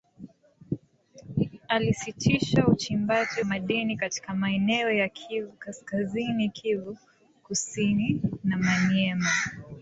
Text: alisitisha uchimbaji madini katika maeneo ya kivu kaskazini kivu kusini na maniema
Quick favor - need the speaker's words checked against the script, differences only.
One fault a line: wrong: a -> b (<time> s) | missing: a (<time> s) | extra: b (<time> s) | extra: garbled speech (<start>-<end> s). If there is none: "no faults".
no faults